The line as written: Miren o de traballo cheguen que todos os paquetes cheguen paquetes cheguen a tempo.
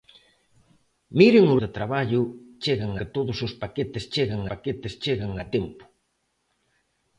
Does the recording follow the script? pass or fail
pass